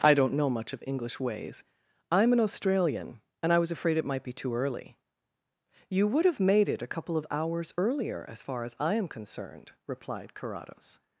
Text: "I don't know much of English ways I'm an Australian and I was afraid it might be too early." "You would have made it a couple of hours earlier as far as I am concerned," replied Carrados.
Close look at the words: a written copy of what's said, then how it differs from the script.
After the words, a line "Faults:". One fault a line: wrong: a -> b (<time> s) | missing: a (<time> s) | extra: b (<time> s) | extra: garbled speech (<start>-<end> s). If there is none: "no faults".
"I don't know much of English ways I'm an Australian and I was afraid it might be too early." "You would have made it a couple of hours earlier as far as I am concerned," replied Carrados.
Faults:
no faults